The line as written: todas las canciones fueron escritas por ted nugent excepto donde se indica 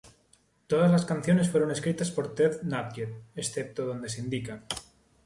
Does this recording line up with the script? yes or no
yes